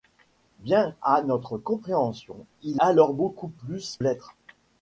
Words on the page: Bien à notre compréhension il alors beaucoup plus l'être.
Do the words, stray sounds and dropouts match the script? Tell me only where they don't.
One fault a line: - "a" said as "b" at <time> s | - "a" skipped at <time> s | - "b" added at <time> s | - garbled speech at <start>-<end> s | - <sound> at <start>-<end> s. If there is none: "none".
none